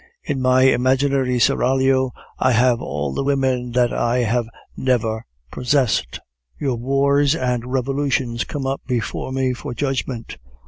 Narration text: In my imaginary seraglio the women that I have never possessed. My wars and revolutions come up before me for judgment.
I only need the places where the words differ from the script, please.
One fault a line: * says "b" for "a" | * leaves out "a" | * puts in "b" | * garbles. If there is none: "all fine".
* puts in "I have all"
* says "Your" for "My"